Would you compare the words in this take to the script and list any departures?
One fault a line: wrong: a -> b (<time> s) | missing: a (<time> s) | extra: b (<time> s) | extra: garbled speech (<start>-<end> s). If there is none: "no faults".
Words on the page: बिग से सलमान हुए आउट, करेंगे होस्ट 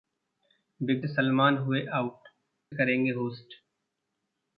no faults